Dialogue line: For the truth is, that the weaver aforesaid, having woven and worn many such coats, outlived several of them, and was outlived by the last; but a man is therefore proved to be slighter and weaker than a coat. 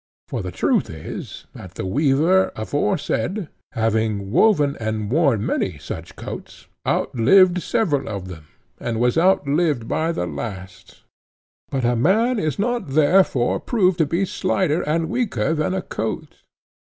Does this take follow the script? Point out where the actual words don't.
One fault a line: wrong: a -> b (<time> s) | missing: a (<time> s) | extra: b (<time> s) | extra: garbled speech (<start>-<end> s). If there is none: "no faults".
extra: not (12.6 s)